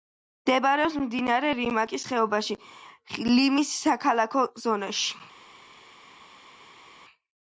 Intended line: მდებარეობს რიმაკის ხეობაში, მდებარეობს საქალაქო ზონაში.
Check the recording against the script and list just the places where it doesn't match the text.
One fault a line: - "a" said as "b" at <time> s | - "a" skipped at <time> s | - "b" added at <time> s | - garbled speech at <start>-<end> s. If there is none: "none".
- "მდინარე" added at 1.0 s
- "მდებარეობს" said as "ლიმის" at 3.3 s